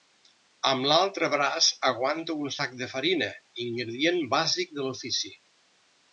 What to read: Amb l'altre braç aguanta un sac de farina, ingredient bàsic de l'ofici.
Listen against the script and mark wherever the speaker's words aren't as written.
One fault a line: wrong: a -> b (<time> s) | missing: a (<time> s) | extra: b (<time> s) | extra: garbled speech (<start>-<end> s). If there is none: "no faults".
no faults